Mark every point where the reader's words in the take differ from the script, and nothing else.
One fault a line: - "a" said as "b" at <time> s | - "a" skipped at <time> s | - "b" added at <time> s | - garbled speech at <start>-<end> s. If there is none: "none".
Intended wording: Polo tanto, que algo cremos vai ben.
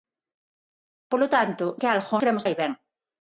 none